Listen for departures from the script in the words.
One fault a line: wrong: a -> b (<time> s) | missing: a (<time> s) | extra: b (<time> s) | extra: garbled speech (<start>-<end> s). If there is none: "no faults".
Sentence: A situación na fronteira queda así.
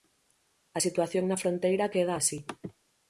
no faults